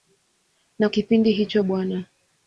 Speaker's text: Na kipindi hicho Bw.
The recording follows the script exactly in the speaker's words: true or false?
true